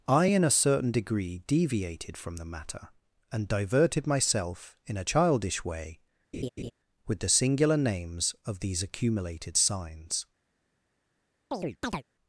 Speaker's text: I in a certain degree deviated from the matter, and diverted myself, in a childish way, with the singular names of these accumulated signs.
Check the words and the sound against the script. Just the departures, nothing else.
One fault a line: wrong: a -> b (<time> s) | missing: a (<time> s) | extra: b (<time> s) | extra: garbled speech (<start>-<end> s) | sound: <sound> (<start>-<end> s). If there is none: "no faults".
sound: laugh (6.3-6.7 s)
sound: chirp (11.5-12.0 s)